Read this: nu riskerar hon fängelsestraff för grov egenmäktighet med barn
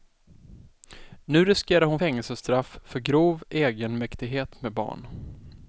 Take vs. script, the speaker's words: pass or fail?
pass